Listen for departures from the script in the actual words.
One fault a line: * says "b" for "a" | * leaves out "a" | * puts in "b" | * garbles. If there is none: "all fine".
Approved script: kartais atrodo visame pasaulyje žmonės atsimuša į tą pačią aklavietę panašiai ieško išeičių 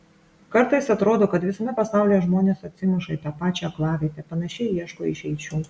* puts in "kad"